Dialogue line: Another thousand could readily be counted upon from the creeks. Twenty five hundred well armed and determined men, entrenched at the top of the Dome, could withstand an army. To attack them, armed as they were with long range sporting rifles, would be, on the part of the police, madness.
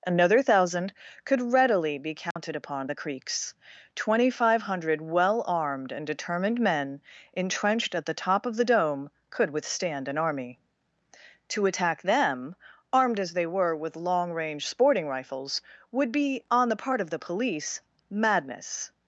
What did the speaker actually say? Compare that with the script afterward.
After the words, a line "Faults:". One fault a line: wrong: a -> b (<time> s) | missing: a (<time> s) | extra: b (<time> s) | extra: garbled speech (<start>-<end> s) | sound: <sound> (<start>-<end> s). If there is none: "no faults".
Another thousand could readily be counted upon the creeks. Twenty five hundred well armed and determined men, entrenched at the top of the Dome, could withstand an army. To attack them, armed as they were with long range sporting rifles, would be, on the part of the police, madness.
Faults:
sound: dropout (2.3-2.4 s)
missing: from (2.9 s)